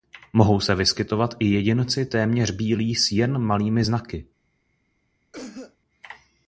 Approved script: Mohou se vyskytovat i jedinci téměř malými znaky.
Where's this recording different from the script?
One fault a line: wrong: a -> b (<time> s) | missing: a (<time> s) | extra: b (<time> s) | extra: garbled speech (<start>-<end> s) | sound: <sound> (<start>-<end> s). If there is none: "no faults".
extra: bílí s jen (2.5 s)
sound: cough (5.3-5.8 s)